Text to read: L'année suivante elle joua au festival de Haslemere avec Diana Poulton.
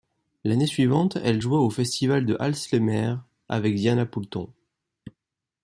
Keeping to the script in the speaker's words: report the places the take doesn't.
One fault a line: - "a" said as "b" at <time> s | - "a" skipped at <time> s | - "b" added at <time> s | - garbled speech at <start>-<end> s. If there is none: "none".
none